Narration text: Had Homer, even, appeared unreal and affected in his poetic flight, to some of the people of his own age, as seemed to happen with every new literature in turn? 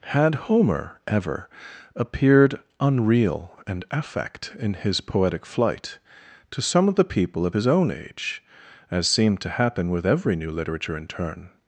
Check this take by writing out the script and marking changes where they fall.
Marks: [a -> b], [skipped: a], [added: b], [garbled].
Had Homer, [even, -> ever] appeared unreal and [affected -> affect] in his poetic flight, to some of the people of his own age, as seemed to happen with every new literature in turn?